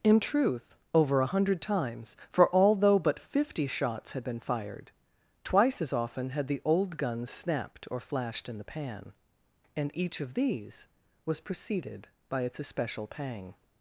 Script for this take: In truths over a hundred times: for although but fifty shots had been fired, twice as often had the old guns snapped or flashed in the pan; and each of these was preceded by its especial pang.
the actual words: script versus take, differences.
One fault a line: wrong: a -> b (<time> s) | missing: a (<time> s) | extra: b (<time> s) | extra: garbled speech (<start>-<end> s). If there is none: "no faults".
wrong: truths -> truth (0.2 s)